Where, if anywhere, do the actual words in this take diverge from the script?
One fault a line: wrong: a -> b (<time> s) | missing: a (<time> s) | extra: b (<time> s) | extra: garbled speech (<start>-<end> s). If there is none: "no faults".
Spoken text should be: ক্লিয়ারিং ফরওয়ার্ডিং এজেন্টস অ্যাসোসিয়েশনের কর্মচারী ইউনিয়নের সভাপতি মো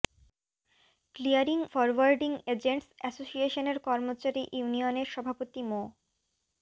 no faults